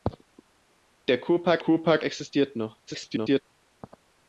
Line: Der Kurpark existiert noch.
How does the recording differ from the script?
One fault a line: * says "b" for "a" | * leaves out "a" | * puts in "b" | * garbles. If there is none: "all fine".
* puts in "Kurpark"
* garbles